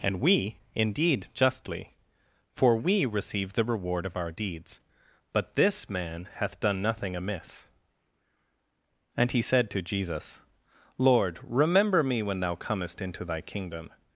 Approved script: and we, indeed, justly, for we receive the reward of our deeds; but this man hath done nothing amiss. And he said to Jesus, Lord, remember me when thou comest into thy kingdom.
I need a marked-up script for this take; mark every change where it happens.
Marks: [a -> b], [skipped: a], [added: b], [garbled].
and we, indeed, justly, for we receive the reward of our deeds; but this man hath done nothing amiss. And he said to Jesus, Lord, remember me when thou comest into thy kingdom.